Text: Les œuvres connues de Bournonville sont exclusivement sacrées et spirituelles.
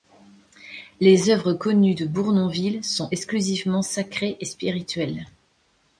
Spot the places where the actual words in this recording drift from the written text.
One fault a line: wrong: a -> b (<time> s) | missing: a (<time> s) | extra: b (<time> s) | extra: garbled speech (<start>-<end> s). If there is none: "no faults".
no faults